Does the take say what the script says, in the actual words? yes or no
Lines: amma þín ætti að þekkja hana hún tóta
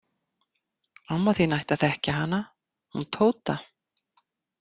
yes